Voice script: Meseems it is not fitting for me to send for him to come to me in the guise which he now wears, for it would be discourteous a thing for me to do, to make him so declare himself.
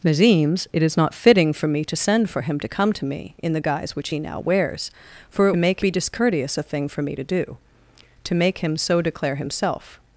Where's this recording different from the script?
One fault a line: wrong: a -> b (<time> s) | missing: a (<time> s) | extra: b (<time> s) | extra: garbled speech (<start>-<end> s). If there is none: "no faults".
wrong: would -> make (5.6 s)